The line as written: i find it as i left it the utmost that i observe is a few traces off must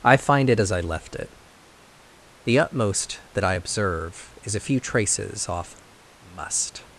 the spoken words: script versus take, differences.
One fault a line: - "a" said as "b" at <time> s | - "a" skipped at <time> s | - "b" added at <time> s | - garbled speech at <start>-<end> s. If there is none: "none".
none